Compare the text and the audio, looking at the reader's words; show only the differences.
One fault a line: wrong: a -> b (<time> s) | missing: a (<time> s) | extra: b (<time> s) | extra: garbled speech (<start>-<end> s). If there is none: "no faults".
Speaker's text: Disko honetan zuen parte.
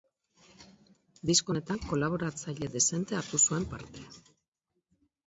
extra: kolaboratzaile dezente hartu (1.9 s)